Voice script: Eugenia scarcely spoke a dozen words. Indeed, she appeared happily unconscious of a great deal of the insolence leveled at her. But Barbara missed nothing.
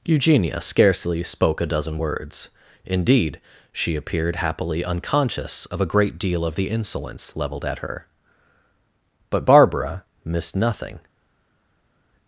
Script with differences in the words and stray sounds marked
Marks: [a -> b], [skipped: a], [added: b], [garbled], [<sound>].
Eugenia scarcely spoke a dozen words. Indeed, she appeared happily unconscious of a great deal of the insolence leveled at her. But Barbara missed nothing.